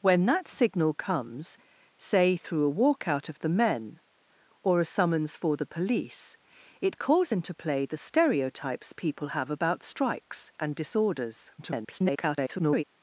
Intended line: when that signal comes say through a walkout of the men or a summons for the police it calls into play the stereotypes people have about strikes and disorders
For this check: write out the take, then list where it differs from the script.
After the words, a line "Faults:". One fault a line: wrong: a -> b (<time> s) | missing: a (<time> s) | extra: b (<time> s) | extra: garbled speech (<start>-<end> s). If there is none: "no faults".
when that signal comes say through a walkout of the men or a summons for the police it calls into play the stereotypes people have about strikes and disorders [garbled]
Faults:
extra: garbled speech (11.6-12.8 s)